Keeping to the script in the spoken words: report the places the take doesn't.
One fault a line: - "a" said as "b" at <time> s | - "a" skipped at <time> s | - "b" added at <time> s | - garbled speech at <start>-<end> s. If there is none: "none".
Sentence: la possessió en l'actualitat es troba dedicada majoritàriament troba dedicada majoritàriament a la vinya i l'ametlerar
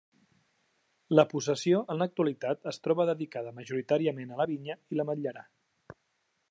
- "troba dedicada majoritàriament" skipped at 4.3 s